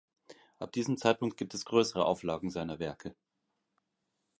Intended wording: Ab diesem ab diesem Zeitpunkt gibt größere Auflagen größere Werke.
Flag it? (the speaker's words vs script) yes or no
yes